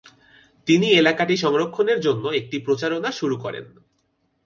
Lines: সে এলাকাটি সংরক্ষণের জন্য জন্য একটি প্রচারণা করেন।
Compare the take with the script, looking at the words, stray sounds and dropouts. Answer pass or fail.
fail